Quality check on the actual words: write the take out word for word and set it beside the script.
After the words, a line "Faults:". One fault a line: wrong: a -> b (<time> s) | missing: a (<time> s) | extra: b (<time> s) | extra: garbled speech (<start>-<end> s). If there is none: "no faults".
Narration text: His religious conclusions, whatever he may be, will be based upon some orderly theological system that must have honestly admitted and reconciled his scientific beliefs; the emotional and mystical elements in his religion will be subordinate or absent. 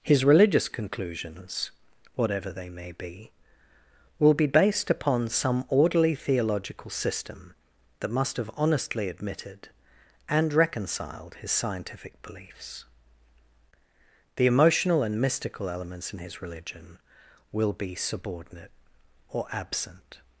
His religious conclusions, whatever they may be, will be based upon some orderly theological system that must have honestly admitted and reconciled his scientific beliefs; the emotional and mystical elements in his religion will be subordinate or absent.
Faults:
wrong: he -> they (2.5 s)